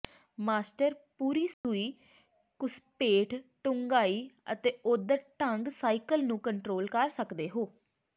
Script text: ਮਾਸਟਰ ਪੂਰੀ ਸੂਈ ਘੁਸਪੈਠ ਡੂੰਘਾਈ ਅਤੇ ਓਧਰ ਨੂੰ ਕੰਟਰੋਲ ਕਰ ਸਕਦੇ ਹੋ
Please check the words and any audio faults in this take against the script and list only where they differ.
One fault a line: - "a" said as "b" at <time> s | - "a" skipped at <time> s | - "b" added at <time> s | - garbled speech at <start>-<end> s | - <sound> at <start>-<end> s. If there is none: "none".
- dropout at 1.5-1.6 s
- "ਢੰਗ ਸਾਈਕਲ" added at 5.4 s